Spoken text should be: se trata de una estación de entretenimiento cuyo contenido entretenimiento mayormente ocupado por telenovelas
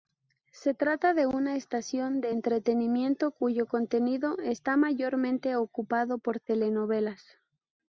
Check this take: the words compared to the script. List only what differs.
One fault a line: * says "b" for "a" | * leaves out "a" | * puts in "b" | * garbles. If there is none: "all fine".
* says "está" for "entretenimiento"